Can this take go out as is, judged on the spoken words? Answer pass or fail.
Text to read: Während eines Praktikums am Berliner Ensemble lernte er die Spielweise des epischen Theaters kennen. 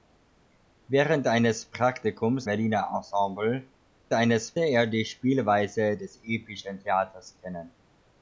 fail